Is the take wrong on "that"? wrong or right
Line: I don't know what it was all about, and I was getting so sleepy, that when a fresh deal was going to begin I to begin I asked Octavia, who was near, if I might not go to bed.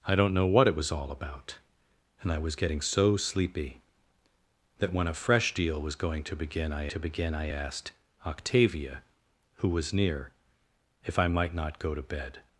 right